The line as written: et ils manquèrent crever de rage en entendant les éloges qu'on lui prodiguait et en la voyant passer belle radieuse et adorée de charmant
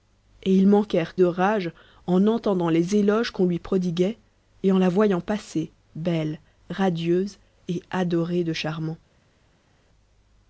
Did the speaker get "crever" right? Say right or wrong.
wrong